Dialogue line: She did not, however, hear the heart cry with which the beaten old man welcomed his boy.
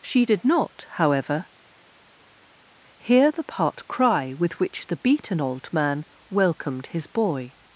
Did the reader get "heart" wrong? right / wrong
wrong